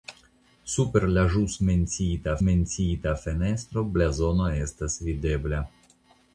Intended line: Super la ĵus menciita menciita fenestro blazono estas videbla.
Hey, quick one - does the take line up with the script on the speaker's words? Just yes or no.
yes